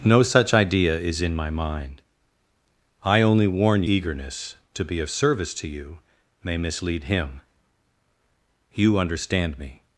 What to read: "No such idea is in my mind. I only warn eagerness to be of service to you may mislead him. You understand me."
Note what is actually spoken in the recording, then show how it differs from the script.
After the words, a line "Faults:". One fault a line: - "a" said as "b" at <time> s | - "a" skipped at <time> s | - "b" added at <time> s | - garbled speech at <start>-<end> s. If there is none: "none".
"No such idea is in my mind. I only warn eagerness to be of service to you may mislead him. You understand me."
Faults:
none